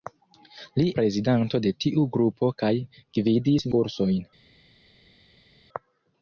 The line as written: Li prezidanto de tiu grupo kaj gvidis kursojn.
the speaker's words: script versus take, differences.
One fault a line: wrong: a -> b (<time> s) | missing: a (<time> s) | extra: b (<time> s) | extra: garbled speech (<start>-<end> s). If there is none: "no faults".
no faults